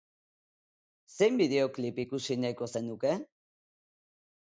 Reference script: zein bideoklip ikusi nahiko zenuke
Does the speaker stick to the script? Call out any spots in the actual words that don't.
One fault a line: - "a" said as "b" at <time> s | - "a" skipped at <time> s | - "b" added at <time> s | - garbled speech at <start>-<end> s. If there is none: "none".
none